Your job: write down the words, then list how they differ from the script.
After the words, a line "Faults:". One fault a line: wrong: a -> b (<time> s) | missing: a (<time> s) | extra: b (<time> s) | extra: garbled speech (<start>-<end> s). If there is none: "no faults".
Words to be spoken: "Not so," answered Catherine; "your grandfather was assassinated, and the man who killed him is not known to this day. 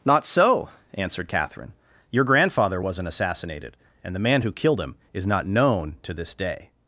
"Not so," answered Catherine; "your grandfather wasn't assassinated, and the man who killed him is not known to this day.
Faults:
wrong: was -> wasn't (2.8 s)